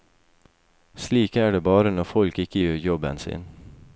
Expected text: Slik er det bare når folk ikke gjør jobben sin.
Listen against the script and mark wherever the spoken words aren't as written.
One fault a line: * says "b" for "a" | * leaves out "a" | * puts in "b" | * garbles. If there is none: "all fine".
all fine